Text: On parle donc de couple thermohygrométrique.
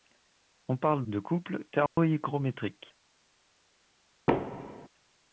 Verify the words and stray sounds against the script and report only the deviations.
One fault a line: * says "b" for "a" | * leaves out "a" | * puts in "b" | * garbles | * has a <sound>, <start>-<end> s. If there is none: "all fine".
* leaves out "donc"
* has a dropout, 1.9-2.0 s
* has a thud, 4.3-4.9 s